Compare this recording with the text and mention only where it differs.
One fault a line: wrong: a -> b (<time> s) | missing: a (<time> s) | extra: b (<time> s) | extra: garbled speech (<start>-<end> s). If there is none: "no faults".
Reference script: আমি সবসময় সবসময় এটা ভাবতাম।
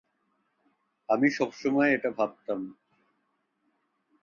missing: সবসময় (1.9 s)